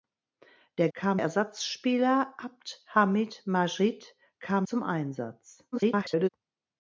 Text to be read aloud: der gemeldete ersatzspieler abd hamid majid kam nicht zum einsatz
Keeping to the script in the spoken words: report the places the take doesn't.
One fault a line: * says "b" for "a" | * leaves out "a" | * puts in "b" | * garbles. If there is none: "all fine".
* says "kam" for "gemeldete"
* leaves out "nicht"
* garbles